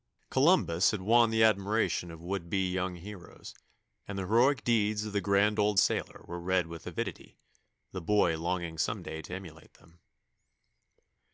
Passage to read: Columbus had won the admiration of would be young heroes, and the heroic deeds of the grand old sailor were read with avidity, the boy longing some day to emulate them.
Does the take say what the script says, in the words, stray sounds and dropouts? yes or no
yes